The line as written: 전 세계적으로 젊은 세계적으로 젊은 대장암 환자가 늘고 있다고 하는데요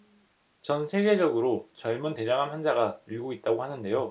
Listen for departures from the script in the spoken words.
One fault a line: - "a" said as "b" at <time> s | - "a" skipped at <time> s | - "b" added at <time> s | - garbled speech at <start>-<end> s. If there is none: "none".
- "세계적으로 젊은" skipped at 2.1 s